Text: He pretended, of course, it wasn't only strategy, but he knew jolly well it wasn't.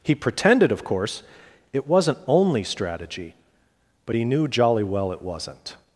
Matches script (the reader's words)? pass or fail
pass